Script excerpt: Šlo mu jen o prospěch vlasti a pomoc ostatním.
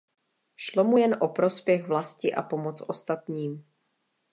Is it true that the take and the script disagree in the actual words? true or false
false